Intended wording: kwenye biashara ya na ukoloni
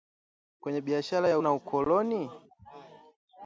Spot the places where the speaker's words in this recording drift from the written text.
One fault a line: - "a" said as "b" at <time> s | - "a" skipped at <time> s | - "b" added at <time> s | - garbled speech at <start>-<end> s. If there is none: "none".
none